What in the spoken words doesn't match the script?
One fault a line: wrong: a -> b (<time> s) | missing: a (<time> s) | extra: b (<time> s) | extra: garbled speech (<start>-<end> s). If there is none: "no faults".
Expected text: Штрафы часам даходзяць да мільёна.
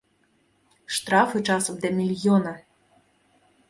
missing: даходзяць (1.8 s)